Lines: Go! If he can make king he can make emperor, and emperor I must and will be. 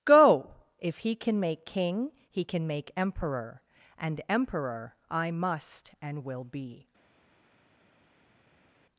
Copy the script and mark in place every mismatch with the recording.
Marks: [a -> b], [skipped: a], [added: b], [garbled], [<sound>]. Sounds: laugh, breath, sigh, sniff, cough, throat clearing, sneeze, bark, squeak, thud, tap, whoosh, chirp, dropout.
Go! If he can make king he can make emperor, and emperor I must and will be.